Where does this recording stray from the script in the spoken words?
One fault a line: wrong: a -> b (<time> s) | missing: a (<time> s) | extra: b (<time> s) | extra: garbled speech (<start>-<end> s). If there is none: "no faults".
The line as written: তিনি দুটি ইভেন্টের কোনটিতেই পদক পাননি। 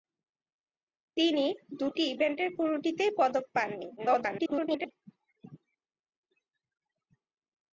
extra: garbled speech (4.0-4.9 s)